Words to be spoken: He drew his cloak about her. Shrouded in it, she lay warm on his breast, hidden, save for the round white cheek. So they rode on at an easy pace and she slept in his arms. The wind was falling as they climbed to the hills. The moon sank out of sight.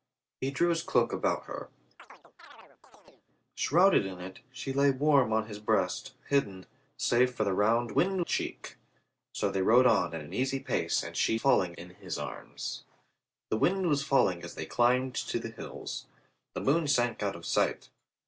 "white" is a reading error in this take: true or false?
true